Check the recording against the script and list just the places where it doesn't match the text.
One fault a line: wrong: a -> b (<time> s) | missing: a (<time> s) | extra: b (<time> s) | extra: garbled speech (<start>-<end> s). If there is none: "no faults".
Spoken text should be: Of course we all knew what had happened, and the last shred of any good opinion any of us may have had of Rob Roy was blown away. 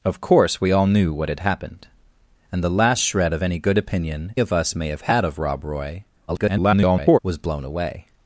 missing: any (4.3 s)
extra: garbled speech (6.3-7.2 s)